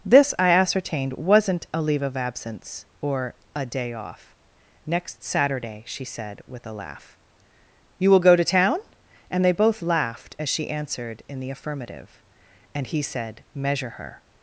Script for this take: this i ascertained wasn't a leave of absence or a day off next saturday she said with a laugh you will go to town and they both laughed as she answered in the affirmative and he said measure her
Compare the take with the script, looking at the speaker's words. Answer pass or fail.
pass